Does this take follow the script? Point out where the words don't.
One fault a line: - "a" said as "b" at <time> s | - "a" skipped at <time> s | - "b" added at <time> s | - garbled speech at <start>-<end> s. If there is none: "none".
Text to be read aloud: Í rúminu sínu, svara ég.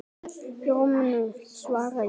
none